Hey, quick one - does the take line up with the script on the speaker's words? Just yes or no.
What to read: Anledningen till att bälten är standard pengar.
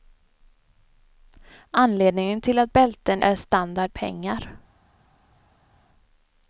yes